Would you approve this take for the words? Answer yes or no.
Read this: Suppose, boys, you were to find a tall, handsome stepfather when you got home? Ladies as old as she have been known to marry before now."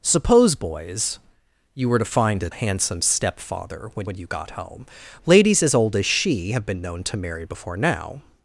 no